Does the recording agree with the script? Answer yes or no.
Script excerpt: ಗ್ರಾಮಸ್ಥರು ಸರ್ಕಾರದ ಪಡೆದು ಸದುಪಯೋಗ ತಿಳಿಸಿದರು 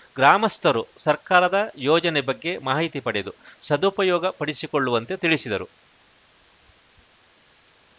no